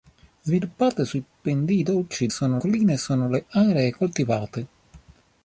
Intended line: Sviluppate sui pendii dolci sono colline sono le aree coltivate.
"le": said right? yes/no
yes